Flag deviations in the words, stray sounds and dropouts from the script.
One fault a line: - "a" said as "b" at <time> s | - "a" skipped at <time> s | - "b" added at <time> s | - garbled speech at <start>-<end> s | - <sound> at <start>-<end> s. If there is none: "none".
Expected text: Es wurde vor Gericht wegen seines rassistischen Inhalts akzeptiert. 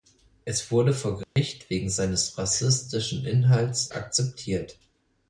- dropout at 1.2-1.4 s